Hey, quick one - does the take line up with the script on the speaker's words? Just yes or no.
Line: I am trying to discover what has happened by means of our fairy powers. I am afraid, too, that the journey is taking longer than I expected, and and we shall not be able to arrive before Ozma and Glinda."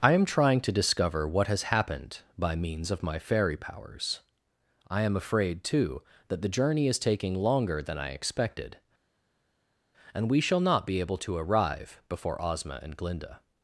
no